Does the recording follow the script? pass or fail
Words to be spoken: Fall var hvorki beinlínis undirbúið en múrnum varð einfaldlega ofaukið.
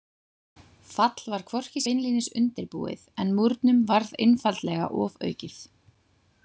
pass